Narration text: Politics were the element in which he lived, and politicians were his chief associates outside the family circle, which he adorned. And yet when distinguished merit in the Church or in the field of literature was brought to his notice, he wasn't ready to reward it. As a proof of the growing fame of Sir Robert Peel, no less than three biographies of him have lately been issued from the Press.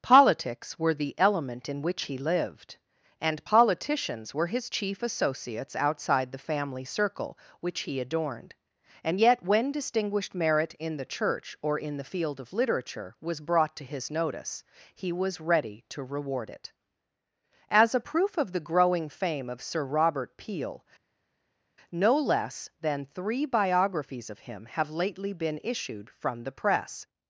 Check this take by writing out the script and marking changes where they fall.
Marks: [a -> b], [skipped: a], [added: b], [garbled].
Politics were the element in which he lived, and politicians were his chief associates outside the family circle, which he adorned. And yet when distinguished merit in the Church or in the field of literature was brought to his notice, he [wasn't -> was] ready to reward it. As a proof of the growing fame of Sir Robert Peel, no less than three biographies of him have lately been issued from the Press.